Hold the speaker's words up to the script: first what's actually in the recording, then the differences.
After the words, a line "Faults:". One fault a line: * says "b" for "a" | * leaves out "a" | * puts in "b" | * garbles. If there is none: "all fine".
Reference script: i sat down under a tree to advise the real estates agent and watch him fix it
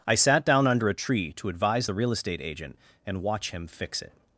i sat down under a tree to advise the real estate agent and watch him fix it
Faults:
* says "estate" for "estates"